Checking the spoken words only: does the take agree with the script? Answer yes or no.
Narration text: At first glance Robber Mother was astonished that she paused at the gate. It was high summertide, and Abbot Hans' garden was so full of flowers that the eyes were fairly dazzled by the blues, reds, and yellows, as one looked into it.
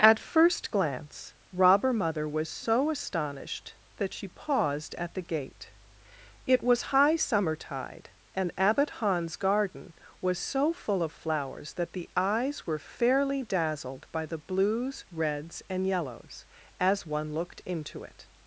no